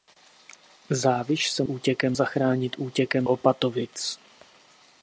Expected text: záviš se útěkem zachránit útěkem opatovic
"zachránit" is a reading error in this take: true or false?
false